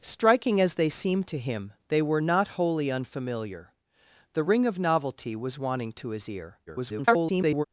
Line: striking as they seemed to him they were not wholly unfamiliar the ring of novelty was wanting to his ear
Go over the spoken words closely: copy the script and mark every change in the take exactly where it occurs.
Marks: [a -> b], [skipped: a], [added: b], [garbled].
striking as they seemed to him they were not wholly unfamiliar the ring of novelty was wanting to his ear [garbled]